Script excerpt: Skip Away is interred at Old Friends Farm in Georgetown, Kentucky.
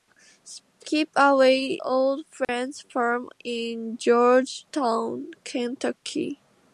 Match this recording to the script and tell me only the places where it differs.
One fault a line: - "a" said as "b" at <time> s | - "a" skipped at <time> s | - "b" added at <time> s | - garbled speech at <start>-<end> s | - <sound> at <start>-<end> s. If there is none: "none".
- "is interred at" skipped at 1.8 s
- dropout at 2.4-2.5 s